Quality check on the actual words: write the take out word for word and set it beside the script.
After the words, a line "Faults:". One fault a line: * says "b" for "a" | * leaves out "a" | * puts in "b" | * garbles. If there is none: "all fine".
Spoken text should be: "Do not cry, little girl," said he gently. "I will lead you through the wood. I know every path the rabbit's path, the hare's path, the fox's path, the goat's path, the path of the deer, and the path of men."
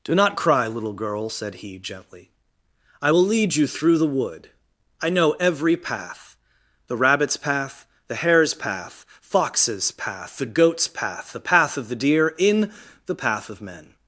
"Do not cry, little girl," said he gently. "I will lead you through the wood. I know every path the rabbit's path, the hare's path, fox's path, the goat's path, the path of the deer, in the path of men."
Faults:
* leaves out "the"
* says "in" for "and"